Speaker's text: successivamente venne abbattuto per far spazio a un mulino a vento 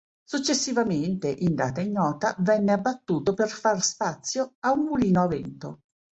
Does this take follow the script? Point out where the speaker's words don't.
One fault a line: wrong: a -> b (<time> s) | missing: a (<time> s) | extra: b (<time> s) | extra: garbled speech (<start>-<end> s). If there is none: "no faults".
extra: in data ignota (1.3 s)